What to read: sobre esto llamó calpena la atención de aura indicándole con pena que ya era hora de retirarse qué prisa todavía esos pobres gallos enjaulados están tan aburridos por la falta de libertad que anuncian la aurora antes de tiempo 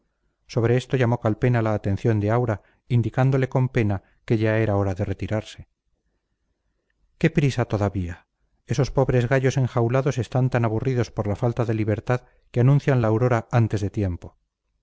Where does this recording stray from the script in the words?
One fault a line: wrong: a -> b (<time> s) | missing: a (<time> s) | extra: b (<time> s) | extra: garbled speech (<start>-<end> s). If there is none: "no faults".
no faults